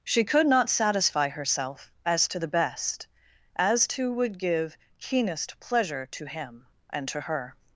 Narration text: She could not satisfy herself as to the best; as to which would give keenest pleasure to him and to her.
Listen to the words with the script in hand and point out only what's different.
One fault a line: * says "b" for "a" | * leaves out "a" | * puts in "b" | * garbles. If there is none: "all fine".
* leaves out "which"